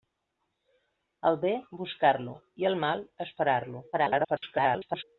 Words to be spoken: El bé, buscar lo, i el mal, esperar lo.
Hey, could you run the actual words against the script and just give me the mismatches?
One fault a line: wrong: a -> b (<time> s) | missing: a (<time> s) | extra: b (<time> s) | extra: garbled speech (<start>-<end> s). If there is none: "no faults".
extra: garbled speech (3.9-5.0 s)